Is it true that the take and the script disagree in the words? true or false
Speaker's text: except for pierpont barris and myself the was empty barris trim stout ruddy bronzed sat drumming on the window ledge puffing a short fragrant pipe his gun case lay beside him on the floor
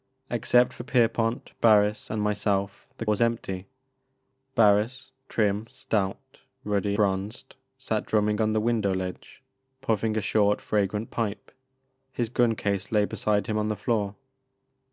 false